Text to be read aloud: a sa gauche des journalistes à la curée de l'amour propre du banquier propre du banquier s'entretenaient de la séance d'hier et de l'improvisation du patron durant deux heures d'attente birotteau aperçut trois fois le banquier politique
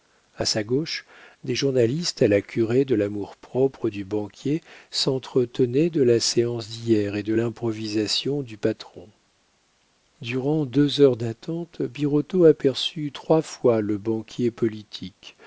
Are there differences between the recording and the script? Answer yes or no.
yes